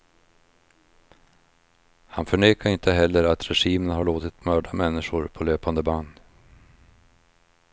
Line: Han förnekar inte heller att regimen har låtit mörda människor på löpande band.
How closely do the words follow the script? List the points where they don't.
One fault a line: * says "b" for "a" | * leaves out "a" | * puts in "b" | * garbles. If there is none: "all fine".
all fine